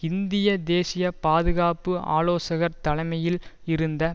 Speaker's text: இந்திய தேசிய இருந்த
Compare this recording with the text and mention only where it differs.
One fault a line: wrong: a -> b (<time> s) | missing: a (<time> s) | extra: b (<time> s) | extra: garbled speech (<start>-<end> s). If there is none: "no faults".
extra: பாதுகாப்பு ஆலோசகர் தலைமையில் (1.2 s)